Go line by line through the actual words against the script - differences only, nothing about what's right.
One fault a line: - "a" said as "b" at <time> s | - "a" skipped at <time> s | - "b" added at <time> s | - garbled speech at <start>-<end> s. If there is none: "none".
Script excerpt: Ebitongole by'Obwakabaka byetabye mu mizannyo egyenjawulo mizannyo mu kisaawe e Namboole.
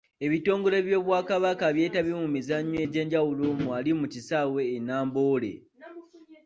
- "mizannyo" said as "wali" at 3.7 s